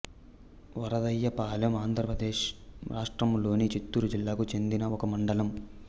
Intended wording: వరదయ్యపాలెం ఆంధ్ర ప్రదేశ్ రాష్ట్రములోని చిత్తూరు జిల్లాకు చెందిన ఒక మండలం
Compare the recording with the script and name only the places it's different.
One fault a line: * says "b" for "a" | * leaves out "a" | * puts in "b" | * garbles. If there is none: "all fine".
all fine